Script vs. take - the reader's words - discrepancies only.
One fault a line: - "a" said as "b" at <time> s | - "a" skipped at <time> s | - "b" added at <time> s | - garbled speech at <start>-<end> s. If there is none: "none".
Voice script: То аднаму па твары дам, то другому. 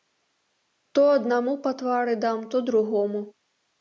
none